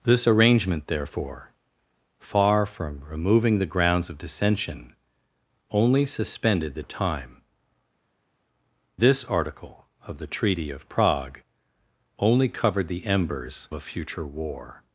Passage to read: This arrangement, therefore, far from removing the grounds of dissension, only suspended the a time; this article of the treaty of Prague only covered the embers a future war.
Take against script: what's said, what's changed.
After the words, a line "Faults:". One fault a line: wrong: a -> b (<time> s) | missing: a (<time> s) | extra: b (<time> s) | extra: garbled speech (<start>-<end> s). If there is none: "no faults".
This arrangement, therefore, far from removing the grounds of dissension, only suspended the a time; this article of the treaty of Prague only covered the embers a future war.
Faults:
no faults